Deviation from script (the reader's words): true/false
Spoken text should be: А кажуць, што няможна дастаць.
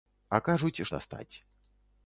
true